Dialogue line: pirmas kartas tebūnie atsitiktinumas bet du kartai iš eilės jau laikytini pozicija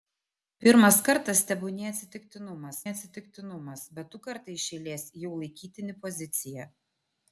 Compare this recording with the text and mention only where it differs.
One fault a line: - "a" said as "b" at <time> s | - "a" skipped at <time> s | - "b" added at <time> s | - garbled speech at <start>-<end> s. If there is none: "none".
- "atsitiktinumas" added at 2.9 s